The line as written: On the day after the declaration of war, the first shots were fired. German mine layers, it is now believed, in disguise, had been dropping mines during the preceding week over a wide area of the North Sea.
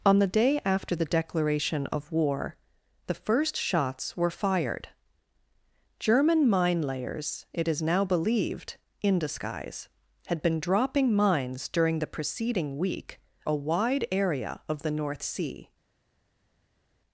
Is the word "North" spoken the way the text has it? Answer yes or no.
yes